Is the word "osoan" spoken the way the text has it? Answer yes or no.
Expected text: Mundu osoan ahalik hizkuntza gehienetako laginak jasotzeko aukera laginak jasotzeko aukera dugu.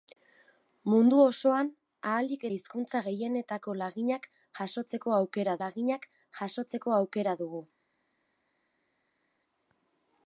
yes